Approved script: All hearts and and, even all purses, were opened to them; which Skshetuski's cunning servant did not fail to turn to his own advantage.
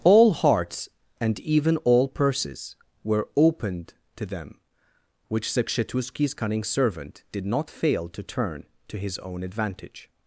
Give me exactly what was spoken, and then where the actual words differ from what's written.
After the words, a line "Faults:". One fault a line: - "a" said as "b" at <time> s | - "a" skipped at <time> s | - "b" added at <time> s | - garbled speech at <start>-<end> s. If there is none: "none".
All hearts and, even all purses, were opened to them; which Skshetuski's cunning servant did not fail to turn to his own advantage.
Faults:
- "and" skipped at 1.4 s